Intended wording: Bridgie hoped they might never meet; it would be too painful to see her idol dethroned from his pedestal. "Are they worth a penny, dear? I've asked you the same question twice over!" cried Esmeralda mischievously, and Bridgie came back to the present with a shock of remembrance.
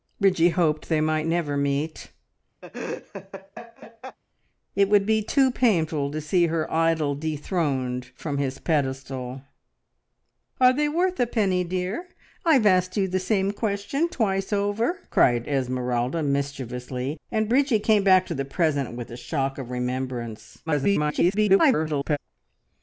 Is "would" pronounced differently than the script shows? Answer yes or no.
no